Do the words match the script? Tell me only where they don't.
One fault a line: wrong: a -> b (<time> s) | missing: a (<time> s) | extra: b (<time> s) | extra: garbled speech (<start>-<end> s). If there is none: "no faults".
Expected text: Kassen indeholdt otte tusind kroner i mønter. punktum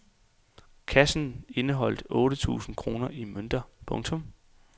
no faults